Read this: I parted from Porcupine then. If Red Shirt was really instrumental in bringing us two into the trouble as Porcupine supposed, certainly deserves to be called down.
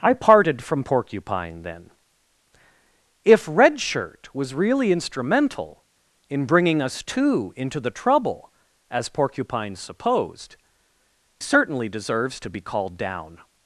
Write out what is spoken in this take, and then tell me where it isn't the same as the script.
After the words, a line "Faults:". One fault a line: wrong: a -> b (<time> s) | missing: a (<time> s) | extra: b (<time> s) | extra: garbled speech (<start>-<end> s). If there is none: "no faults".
I parted from Porcupine then. If Red Shirt was really instrumental in bringing us two into the trouble as Porcupine supposed, certainly deserves to be called down.
Faults:
no faults